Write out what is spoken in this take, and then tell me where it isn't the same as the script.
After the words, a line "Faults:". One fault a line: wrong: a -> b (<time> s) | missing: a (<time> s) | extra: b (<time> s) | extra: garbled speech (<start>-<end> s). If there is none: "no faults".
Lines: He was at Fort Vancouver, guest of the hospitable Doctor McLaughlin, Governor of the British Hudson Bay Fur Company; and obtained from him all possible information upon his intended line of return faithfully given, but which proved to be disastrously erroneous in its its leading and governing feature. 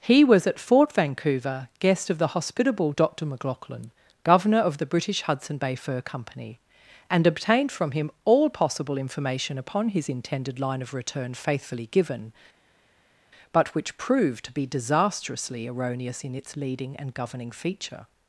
He was at Fort Vancouver, guest of the hospitable Doctor McLaughlin, Governor of the British Hudson Bay Fur Company; and obtained from him all possible information upon his intended line of return faithfully given, but which proved to be disastrously erroneous in its leading and governing feature.
Faults:
missing: its (16.6 s)